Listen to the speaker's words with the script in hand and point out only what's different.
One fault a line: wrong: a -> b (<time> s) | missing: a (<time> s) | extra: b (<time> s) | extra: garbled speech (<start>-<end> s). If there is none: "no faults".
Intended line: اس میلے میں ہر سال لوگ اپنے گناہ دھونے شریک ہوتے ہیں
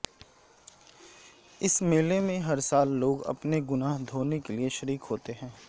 extra: کے لیے (4.4 s)